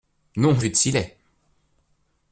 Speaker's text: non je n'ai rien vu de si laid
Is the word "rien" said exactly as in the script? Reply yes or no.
no